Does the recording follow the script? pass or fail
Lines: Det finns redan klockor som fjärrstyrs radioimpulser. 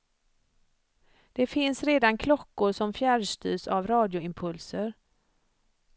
fail